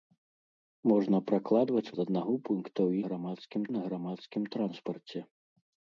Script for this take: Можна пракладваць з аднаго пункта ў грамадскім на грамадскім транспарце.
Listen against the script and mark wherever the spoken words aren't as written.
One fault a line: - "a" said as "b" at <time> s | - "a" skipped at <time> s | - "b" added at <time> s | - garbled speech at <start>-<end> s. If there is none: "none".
none